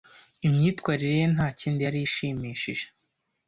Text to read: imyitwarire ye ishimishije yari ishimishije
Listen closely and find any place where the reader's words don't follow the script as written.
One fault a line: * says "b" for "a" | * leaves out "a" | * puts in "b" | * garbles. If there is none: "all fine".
* says "ntakindi" for "ishimishije"